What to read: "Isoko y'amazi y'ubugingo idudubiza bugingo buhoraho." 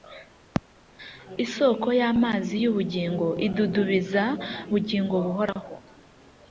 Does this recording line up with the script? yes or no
yes